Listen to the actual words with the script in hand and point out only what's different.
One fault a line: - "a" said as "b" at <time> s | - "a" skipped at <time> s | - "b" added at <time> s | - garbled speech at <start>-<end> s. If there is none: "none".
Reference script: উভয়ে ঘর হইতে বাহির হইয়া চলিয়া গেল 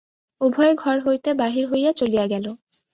none